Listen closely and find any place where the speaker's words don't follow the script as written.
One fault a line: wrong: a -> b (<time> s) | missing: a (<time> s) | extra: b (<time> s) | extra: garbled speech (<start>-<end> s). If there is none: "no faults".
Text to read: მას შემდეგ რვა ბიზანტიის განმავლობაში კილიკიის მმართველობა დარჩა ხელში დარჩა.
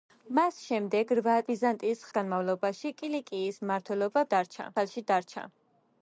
no faults